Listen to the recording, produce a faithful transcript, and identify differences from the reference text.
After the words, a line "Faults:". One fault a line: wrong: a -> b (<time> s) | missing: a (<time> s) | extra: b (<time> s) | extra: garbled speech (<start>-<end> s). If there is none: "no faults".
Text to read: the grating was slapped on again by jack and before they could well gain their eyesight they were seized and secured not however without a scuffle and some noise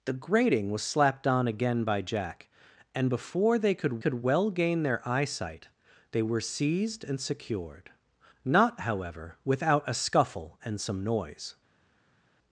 the grating was slapped on again by jack and before they could could well gain their eyesight they were seized and secured not however without a scuffle and some noise
Faults:
extra: could (4.0 s)